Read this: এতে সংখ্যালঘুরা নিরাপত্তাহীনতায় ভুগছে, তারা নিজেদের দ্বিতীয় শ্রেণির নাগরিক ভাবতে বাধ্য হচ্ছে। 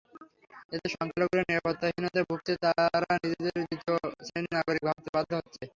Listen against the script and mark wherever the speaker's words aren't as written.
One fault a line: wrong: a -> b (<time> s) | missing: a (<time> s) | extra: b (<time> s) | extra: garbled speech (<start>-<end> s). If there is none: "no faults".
no faults